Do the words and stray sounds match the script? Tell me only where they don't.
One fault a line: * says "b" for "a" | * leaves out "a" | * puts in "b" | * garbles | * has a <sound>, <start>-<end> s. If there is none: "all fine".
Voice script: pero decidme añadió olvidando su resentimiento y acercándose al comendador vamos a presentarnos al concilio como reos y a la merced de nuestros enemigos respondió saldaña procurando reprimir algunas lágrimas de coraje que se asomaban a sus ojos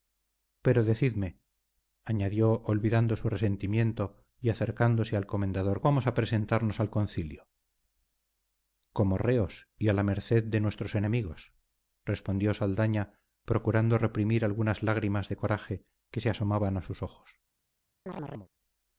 * has a chirp, 18.1-18.5 s